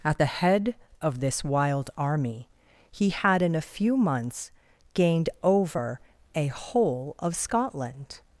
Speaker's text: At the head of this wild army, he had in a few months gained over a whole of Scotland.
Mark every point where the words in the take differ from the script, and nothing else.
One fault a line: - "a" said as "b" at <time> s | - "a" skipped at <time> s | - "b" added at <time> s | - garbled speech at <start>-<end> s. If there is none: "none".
none